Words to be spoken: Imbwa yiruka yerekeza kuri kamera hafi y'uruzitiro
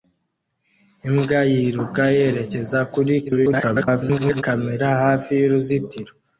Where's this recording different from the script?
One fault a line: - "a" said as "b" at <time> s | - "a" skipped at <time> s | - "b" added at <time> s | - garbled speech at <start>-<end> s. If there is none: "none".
- garbled speech at 3.3-4.4 s